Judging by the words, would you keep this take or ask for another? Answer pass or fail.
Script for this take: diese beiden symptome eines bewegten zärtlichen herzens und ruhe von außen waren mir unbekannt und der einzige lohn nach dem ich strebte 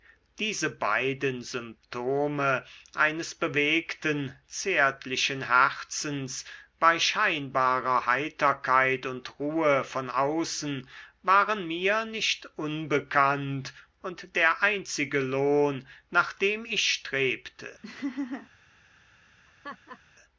fail